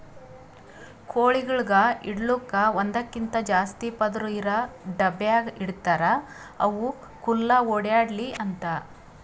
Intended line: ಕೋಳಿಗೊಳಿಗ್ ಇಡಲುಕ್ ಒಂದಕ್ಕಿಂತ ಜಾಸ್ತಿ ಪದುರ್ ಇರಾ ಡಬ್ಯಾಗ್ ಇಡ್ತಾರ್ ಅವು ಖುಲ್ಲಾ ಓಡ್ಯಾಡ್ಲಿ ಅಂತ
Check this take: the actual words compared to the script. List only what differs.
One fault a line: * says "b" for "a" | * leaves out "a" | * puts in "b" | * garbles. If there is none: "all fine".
all fine